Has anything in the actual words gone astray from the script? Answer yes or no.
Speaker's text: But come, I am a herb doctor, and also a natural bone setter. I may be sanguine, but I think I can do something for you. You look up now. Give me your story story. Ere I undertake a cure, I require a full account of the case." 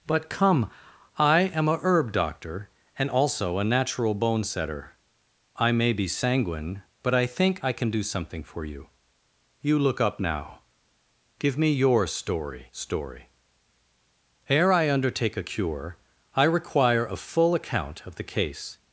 no